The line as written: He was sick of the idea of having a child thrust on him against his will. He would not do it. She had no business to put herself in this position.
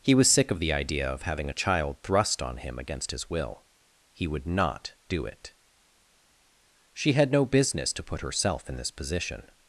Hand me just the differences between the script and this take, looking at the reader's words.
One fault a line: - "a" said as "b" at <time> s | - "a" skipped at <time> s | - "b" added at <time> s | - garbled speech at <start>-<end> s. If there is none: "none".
none